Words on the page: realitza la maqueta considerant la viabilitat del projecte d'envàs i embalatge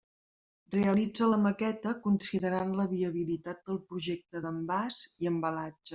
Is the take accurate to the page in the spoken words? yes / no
yes